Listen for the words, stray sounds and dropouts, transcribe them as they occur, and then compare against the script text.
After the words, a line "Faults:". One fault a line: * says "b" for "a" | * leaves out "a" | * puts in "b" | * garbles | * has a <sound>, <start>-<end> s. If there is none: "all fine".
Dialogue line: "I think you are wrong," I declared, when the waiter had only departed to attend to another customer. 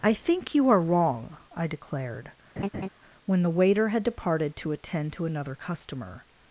"I think you are wrong," I declared, when the waiter had departed to attend to another customer.
Faults:
* has a laugh, 2.6-2.9 s
* leaves out "only"